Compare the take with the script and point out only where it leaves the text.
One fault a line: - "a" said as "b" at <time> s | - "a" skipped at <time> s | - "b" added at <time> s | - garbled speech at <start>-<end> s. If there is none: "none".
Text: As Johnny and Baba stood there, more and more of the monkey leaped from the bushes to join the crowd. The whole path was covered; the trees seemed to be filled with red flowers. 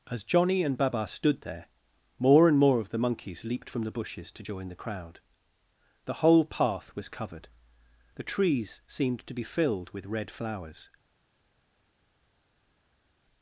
- "monkey" said as "monkeys" at 3.0 s